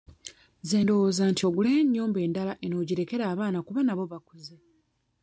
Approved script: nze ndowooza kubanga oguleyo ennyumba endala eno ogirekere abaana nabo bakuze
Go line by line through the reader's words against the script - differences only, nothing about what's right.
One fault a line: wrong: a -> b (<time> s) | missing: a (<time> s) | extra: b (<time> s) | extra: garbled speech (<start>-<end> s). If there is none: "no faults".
wrong: kubanga -> nti (1.3 s)
extra: kuba (3.7 s)